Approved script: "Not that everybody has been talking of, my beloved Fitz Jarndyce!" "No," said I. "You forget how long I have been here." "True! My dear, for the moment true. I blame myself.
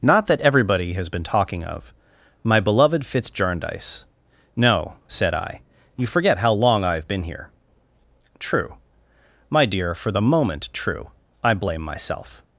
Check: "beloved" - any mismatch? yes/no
no